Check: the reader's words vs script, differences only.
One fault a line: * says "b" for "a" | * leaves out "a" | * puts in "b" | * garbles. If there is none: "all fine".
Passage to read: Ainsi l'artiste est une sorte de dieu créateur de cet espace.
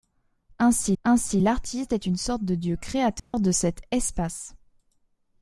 * puts in "ainsi"